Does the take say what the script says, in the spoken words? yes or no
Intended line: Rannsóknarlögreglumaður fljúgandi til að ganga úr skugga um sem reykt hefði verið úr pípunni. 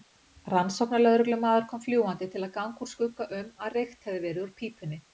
no